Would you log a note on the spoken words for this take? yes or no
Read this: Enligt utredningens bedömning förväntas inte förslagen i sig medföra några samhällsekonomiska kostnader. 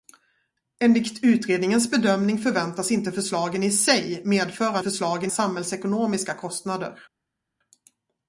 yes